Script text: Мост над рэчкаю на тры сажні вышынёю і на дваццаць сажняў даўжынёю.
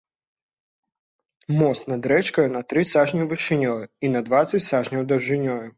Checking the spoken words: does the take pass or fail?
pass